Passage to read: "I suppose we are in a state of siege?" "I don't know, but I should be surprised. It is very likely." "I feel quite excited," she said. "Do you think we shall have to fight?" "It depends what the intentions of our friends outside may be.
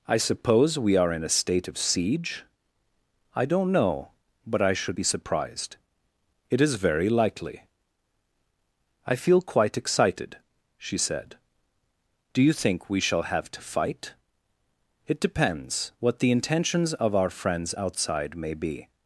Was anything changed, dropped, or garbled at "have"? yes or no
no